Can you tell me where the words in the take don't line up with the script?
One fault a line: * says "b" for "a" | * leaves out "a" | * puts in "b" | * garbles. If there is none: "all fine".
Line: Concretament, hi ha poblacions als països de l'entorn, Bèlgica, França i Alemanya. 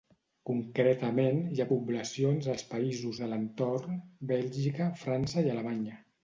all fine